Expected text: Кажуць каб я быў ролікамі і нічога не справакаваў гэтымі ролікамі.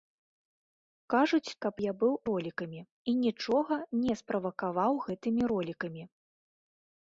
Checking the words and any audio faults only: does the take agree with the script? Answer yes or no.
yes